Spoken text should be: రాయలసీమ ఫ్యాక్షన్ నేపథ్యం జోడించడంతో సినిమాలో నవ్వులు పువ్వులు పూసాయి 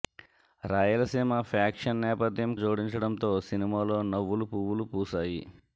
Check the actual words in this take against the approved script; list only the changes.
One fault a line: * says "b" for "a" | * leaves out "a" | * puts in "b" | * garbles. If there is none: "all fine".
all fine